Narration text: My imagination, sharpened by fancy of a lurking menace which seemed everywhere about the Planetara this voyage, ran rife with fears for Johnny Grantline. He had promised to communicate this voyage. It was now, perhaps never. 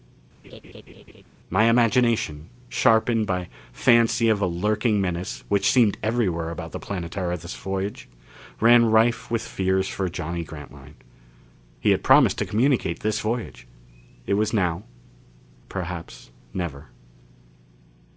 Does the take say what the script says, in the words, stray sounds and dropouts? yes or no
no